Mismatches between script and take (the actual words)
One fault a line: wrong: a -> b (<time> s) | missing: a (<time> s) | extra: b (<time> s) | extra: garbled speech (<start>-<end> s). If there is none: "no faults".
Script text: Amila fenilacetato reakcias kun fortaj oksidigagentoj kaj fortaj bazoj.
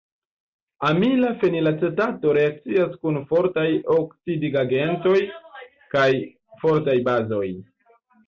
no faults